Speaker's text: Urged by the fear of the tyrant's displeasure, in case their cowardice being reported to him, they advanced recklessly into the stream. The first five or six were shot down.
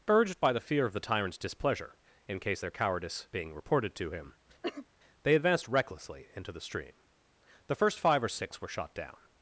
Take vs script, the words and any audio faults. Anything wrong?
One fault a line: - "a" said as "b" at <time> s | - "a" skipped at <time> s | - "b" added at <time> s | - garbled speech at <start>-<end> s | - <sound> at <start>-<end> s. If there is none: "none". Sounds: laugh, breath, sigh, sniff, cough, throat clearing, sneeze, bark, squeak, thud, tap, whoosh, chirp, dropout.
- cough at 4.6-4.9 s